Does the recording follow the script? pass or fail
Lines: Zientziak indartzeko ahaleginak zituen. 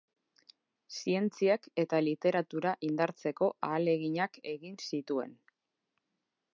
fail